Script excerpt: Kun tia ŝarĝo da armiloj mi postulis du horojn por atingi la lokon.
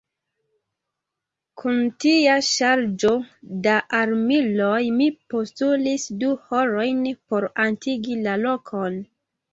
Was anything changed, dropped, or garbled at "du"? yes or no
no